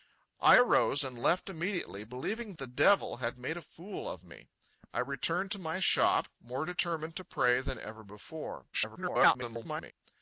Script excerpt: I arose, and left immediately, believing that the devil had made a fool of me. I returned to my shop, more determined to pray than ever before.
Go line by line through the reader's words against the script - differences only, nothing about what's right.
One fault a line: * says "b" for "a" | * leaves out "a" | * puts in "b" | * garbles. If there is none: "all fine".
* leaves out "that"
* garbles